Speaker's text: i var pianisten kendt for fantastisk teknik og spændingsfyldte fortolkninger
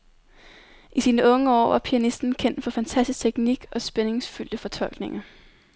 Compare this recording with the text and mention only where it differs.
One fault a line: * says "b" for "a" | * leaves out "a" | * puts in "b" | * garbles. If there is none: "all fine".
* puts in "sine unge år"